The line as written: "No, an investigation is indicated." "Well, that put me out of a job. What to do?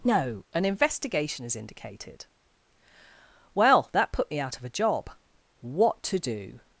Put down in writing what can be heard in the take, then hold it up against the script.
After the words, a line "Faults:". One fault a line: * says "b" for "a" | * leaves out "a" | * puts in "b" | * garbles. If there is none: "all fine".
"No, an investigation is indicated." "Well, that put me out of a job. What to do?
Faults:
all fine